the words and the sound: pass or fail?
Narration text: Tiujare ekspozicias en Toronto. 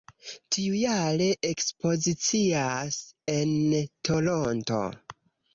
pass